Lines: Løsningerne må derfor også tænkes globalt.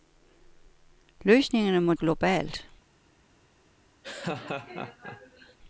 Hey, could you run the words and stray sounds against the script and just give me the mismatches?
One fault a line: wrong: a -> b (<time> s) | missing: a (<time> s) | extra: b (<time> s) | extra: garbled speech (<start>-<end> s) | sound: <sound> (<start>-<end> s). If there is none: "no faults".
missing: derfor også tænkes (1.9 s)
sound: laugh (4.0-5.6 s)